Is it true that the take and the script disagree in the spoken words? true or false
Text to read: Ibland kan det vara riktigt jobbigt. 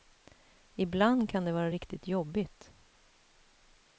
false